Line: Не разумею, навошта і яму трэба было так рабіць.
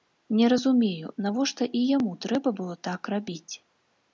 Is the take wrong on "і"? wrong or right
right